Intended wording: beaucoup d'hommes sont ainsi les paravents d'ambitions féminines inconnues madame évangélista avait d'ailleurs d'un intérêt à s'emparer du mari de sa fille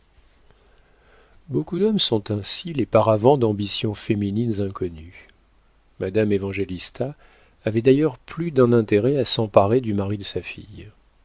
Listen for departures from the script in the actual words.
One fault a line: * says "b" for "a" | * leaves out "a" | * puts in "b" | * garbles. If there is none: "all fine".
* puts in "plus"